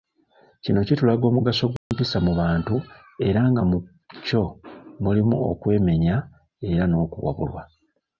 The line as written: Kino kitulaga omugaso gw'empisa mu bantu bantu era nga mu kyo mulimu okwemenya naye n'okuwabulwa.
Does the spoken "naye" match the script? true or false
false